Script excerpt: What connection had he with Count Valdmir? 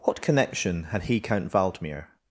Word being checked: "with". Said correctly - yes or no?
no